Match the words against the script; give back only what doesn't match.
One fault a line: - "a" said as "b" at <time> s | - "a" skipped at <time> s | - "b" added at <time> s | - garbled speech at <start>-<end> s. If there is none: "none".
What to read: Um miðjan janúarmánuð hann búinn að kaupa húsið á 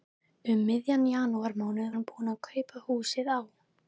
none